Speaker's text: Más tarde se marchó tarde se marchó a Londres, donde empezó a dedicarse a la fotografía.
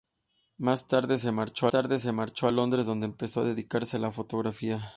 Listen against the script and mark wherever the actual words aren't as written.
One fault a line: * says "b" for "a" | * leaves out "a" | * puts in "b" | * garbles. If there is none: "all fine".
all fine